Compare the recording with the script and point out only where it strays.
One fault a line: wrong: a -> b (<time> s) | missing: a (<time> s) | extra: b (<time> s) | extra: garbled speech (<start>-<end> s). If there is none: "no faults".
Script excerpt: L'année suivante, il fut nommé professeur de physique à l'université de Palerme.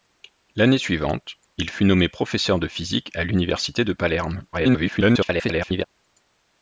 extra: garbled speech (4.5-5.8 s)